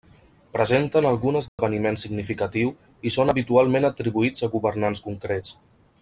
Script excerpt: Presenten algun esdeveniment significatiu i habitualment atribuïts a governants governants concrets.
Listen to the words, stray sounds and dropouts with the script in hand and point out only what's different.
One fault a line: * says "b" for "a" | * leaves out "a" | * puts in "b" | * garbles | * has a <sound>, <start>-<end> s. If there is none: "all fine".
* has a dropout, 1.5-1.6 s
* puts in "són"
* leaves out "governants"